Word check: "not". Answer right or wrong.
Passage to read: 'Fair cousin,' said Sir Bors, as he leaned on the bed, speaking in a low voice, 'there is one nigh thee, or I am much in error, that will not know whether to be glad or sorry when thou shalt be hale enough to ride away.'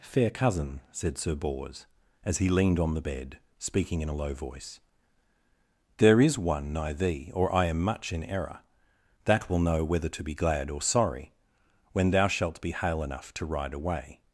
wrong